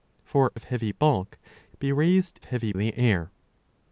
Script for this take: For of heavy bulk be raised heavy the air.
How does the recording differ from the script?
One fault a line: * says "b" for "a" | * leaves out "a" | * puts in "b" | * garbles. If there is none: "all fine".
all fine